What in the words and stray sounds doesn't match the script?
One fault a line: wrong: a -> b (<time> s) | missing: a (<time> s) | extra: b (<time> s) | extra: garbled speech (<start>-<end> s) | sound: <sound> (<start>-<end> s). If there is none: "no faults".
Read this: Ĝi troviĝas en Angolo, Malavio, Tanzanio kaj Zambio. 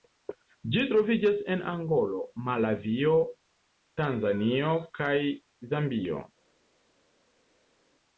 no faults